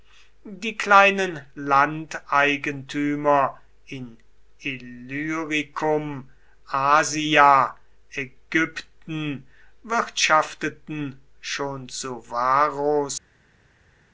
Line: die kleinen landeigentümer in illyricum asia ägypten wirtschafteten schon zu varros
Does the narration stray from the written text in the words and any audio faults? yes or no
no